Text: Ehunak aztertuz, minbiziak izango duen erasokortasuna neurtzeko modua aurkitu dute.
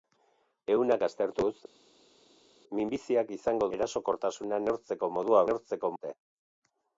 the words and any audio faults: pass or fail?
fail